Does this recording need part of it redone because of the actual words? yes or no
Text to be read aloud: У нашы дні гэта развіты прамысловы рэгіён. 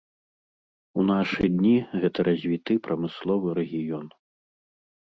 no